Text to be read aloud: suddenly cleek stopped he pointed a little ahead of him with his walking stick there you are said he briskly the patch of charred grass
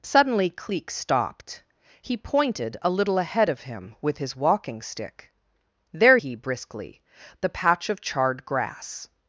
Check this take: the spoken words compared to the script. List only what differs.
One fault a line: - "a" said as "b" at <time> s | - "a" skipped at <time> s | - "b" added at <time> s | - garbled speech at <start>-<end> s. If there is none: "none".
- "you are said" skipped at 6.2 s